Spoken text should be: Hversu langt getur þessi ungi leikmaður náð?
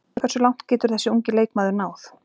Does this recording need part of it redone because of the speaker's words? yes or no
no